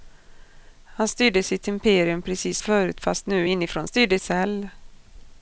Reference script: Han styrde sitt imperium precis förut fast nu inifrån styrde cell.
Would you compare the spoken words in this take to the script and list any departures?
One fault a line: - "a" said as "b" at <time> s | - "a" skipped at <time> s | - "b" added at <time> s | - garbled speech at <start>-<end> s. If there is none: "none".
none